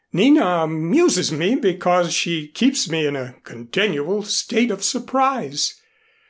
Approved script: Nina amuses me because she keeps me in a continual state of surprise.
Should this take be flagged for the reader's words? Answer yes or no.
no